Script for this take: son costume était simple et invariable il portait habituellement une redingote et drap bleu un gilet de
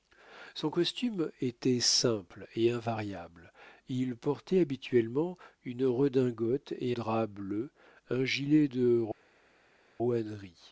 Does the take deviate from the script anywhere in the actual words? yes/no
no